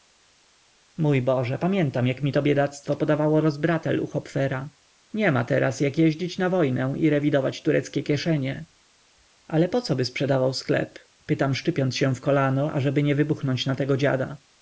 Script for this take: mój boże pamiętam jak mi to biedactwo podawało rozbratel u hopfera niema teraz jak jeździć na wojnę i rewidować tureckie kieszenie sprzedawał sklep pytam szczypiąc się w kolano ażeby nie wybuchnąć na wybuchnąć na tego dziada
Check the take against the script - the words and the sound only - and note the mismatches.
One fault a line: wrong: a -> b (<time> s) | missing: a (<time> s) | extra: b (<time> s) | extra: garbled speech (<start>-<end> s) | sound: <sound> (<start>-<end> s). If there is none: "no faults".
extra: ale pocoby (9.5 s)
missing: wybuchnąć na (13.8 s)